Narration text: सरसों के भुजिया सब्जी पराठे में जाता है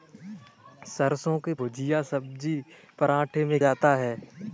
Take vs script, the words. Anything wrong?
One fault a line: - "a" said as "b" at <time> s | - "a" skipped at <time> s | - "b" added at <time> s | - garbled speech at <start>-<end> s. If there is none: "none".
none